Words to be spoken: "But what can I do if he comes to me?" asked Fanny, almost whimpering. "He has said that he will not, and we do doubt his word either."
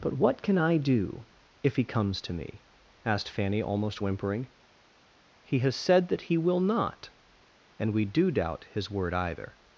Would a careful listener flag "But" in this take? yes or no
no